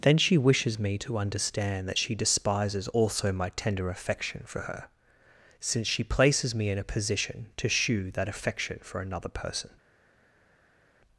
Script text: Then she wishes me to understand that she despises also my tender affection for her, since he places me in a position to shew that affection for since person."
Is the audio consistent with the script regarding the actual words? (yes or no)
no